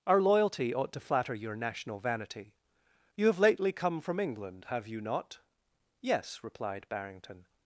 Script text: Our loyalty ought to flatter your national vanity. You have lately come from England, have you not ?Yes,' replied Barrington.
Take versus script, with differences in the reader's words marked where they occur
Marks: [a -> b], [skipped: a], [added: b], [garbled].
Our loyalty ought to flatter your national vanity. You have lately come from England, have you not ?Yes,' replied Barrington.